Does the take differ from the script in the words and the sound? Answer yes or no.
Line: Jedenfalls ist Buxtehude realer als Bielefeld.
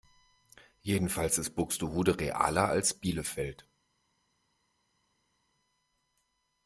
no